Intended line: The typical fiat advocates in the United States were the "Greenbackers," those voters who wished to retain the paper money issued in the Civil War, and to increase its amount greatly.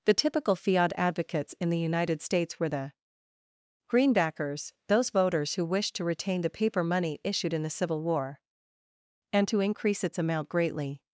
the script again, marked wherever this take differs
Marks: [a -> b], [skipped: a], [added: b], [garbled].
The typical fiat advocates in the United States were the "Greenbackers," those voters who wished to retain the paper money issued in the Civil War, and to increase its amount greatly.